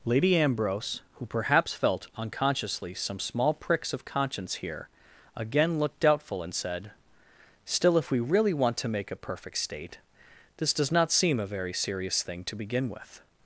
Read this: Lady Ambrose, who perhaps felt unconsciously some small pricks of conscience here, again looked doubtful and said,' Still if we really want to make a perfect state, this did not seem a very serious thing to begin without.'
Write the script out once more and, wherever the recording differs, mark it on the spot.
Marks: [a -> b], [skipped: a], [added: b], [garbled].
Lady Ambrose, who perhaps felt unconsciously some small pricks of conscience here, again looked doubtful and said,' Still if we really want to make a perfect state, this [did -> does] not seem a very serious thing to begin [without.' -> with]